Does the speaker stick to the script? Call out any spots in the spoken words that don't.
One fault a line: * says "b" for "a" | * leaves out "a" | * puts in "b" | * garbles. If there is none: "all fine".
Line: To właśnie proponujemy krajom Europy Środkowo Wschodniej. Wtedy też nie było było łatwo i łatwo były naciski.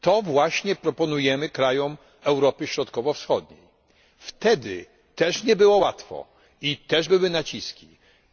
* leaves out "było"
* says "też" for "łatwo"